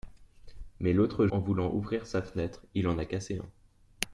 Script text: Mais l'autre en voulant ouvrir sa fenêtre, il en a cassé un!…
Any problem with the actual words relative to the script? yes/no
no